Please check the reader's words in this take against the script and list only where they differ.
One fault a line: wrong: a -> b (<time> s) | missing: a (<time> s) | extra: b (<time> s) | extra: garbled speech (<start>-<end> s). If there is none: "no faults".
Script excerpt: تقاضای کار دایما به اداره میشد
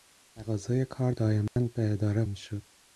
no faults